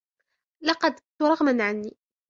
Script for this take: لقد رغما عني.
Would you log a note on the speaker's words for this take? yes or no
no